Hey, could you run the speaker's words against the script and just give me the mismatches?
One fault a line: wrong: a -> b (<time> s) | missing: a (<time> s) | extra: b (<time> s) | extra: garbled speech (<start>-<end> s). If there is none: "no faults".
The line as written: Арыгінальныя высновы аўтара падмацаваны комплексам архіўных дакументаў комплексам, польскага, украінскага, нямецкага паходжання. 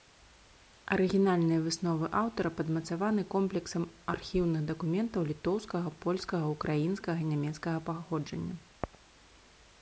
wrong: комплексам -> літоўскага (5.3 s)